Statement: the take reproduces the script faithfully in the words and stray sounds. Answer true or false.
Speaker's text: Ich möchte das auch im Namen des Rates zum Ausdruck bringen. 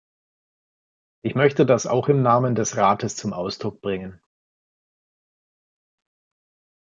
true